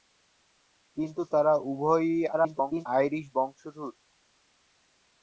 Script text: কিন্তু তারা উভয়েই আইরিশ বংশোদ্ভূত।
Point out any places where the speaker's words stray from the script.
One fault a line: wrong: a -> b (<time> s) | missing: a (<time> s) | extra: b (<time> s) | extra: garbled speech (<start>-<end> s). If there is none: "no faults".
extra: garbled speech (2.3-2.9 s)